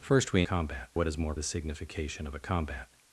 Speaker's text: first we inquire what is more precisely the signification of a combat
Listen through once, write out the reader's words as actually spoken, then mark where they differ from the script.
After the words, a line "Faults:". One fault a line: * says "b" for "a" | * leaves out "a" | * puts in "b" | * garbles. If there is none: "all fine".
first we combat what is more the signification of a combat
Faults:
* says "combat" for "inquire"
* leaves out "precisely"